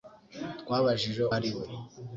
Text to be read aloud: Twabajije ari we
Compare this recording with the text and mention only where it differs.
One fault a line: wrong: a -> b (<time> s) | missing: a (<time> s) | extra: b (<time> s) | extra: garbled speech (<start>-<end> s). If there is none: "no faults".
no faults